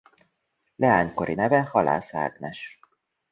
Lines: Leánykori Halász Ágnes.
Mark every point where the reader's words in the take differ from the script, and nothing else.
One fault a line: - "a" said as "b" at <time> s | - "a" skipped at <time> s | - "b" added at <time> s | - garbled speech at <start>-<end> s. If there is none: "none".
- "neve" added at 1.3 s